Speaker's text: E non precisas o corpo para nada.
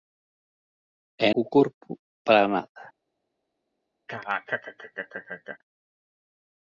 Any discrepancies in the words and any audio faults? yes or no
yes